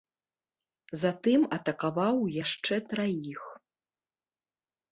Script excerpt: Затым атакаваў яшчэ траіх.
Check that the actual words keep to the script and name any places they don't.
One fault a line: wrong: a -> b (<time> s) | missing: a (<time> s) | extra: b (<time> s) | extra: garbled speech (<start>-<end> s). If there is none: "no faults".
no faults